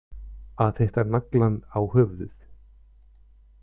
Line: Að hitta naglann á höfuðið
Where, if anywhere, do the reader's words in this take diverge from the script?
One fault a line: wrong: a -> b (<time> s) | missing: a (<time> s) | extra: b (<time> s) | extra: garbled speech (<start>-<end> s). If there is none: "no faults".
no faults